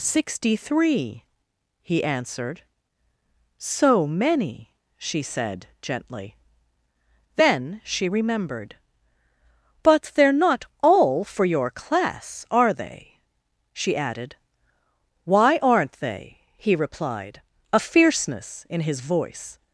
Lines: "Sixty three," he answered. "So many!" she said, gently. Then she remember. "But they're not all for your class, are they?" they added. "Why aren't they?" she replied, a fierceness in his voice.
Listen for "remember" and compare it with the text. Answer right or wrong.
wrong